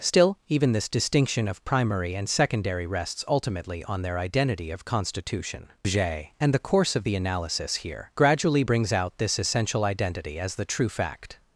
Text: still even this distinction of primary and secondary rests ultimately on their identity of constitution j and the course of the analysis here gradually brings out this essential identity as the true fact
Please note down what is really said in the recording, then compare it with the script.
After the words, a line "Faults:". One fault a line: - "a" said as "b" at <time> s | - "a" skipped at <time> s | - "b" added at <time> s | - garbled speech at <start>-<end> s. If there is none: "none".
still even this distinction of primary and secondary rests ultimately on their identity of constitution j and the course of the analysis here gradually brings out this essential identity as the true fact
Faults:
none